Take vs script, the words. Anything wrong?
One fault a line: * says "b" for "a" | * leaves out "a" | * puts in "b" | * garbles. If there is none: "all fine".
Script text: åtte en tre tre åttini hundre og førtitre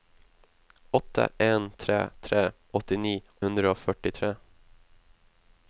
all fine